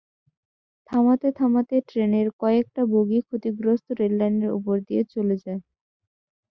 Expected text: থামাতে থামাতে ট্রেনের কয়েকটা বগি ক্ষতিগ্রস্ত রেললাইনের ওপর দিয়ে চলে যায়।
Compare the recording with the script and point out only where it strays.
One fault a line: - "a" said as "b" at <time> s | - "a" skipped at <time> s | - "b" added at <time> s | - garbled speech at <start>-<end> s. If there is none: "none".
none